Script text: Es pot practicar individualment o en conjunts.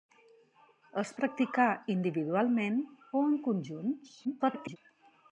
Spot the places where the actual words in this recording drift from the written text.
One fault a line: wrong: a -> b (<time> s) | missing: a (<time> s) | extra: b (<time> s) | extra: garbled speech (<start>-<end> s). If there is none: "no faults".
missing: pot (1.1 s)
extra: garbled speech (4.2-4.8 s)